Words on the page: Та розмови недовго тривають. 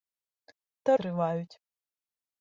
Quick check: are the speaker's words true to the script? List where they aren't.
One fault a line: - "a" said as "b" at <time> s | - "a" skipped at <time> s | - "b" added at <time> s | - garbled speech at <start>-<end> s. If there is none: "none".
- "розмови недовго" skipped at 1.0 s